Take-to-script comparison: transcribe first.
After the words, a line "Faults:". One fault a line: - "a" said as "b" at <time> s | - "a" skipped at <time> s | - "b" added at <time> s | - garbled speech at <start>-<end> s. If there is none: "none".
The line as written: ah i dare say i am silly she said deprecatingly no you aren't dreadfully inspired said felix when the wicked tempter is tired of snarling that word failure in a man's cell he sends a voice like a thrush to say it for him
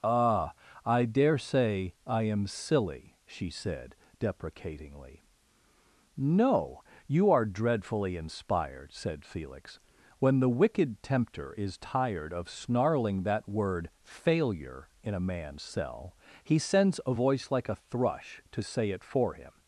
ah i dare say i am silly she said deprecatingly no you are dreadfully inspired said felix when the wicked tempter is tired of snarling that word failure in a man's cell he sends a voice like a thrush to say it for him
Faults:
- "aren't" said as "are" at 7.3 s